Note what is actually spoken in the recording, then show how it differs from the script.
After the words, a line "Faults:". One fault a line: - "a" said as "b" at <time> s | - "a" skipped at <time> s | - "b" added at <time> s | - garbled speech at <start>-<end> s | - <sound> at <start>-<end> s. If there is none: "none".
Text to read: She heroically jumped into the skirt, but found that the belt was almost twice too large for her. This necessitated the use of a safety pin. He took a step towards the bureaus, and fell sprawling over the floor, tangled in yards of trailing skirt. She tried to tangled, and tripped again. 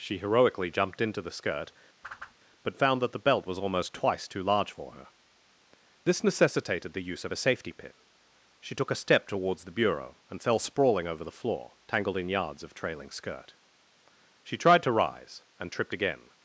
She heroically jumped into the skirt, but found that the belt was almost twice too large for her. This necessitated the use of a safety pin. She took a step towards the bureau, and fell sprawling over the floor, tangled in yards of trailing skirt. She tried to rise, and tripped again.
Faults:
- whoosh at 2.0-2.4 s
- "He" said as "She" at 8.6 s
- "bureaus" said as "bureau" at 9.8 s
- "tangled" said as "rise" at 14.9 s